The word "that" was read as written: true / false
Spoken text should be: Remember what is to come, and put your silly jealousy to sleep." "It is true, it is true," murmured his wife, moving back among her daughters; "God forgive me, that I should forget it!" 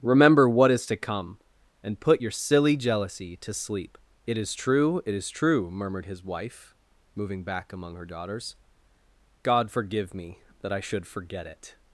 true